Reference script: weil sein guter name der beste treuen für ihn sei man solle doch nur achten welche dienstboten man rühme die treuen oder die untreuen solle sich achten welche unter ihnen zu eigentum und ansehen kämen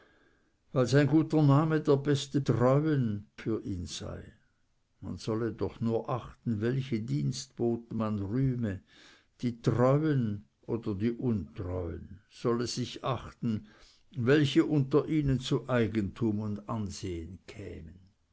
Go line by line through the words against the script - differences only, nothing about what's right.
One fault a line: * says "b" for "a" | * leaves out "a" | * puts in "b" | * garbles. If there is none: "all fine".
all fine